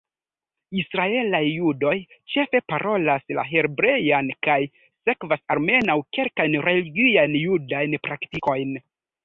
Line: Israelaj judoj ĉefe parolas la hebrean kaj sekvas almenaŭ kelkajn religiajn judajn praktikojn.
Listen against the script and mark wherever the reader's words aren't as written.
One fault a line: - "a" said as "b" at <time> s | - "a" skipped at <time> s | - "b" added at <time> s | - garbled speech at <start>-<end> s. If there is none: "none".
none